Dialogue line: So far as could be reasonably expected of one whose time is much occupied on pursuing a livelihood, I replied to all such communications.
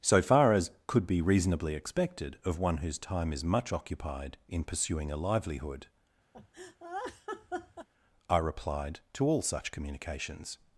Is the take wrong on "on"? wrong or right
wrong